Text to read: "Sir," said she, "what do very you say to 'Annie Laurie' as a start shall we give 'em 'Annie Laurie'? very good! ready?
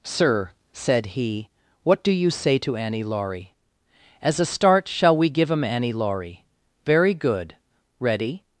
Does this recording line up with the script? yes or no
no